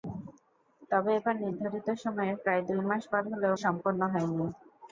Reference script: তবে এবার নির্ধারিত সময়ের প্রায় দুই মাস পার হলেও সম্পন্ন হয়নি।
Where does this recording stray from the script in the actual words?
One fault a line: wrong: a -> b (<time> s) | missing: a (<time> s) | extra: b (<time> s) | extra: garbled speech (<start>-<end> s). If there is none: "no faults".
no faults